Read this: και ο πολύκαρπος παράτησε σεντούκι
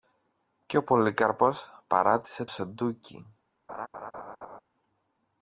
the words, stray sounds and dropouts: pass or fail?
fail